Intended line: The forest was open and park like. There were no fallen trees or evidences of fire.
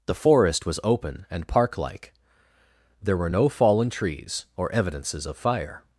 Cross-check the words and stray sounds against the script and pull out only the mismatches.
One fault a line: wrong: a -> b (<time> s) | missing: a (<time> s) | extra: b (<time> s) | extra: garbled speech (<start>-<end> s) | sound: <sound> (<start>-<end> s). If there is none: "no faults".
no faults